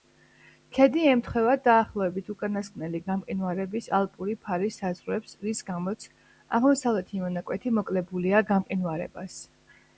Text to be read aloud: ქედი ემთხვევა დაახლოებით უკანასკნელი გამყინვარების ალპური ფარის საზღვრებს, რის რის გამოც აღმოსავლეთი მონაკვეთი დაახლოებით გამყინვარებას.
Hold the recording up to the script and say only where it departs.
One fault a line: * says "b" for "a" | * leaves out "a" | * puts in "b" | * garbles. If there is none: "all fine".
* leaves out "რის"
* says "მოკლებულია" for "დაახლოებით"